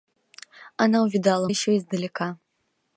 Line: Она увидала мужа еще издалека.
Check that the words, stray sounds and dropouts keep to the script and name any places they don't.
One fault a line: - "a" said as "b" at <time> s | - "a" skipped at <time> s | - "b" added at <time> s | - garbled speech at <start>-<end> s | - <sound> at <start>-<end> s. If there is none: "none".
- "мужа" skipped at 1.5 s